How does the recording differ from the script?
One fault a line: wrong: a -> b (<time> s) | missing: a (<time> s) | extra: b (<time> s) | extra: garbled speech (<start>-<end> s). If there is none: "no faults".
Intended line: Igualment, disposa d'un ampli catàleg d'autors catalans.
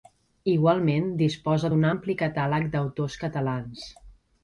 no faults